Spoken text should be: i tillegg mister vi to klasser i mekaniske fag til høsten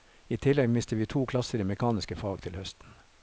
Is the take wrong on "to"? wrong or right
right